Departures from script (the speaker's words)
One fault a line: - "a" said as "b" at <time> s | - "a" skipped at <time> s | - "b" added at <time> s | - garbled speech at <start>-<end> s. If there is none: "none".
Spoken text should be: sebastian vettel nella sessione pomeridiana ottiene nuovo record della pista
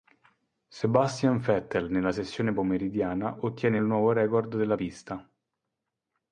none